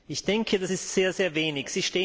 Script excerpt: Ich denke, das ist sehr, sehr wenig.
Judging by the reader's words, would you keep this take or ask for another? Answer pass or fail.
pass